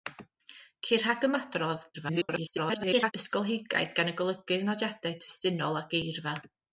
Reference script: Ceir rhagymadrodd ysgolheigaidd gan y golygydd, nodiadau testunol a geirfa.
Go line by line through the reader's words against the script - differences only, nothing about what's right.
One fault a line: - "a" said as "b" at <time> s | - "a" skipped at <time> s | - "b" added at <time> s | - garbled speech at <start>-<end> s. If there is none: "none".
- garbled speech at 1.9-3.1 s